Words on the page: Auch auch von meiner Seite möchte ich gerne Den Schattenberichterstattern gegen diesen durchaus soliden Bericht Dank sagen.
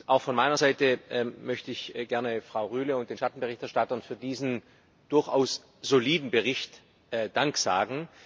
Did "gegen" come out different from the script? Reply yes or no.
yes